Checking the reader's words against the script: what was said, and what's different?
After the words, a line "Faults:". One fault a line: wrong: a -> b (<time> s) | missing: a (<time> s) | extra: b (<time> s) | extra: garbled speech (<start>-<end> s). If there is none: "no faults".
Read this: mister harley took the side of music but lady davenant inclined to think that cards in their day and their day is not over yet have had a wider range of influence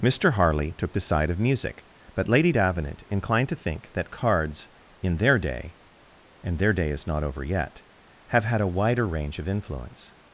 mister harley took the side of music but lady davenant inclined to think that cards in their day and their day is not over yet have had a wider range of influence
Faults:
no faults